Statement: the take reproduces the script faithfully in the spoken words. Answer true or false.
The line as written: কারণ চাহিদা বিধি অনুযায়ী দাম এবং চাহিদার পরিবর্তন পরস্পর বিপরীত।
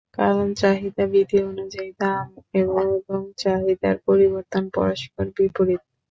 true